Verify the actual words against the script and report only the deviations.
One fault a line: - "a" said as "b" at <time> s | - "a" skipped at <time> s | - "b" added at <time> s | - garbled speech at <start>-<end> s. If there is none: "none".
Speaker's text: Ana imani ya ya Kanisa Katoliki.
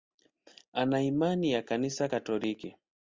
- "ya" skipped at 1.6 s